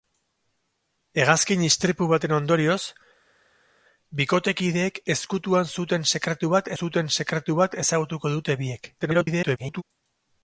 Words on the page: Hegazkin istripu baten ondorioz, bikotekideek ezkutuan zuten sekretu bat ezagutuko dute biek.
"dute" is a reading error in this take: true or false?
false